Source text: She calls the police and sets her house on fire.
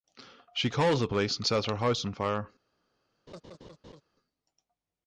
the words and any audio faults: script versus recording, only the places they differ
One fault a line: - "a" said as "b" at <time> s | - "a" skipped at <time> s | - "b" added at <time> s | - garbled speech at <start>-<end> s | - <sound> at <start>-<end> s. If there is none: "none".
- laugh at 3.3-4.0 s